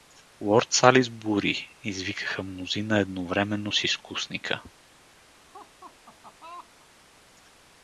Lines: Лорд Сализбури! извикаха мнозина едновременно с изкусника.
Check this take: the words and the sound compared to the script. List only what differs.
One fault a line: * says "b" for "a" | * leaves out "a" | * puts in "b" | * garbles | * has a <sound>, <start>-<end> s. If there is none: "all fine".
* has a laugh, 5.3-6.9 s